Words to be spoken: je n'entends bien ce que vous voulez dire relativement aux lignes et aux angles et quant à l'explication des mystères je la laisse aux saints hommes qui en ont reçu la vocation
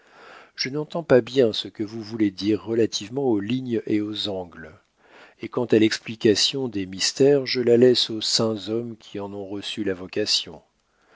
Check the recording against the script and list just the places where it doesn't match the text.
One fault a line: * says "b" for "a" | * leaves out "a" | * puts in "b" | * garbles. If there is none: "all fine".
* puts in "pas"